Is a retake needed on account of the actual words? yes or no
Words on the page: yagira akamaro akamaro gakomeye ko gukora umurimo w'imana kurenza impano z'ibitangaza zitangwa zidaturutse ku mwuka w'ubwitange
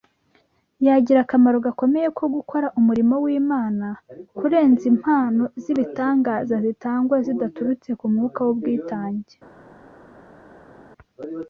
yes